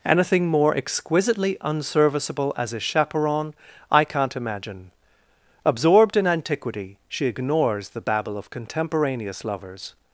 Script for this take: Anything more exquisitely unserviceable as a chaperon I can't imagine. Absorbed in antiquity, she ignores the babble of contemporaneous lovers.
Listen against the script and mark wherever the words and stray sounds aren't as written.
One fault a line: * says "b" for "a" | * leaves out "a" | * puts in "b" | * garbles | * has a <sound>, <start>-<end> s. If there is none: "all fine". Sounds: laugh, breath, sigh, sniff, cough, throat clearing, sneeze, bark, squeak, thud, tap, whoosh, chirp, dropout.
all fine